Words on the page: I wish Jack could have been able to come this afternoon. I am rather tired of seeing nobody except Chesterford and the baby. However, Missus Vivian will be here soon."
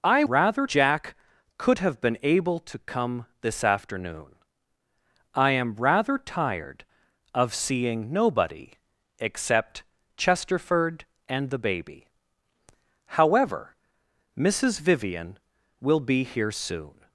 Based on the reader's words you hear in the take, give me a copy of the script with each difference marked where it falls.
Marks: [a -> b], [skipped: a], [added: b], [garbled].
I [wish -> rather] Jack could have been able to come this afternoon. I am rather tired of seeing nobody except Chesterford and the baby. However, Missus Vivian will be here soon."